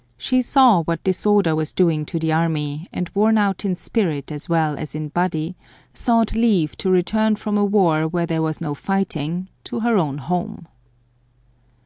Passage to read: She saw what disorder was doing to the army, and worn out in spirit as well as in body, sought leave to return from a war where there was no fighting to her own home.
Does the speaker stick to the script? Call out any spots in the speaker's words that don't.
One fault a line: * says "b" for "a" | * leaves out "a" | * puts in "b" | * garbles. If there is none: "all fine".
all fine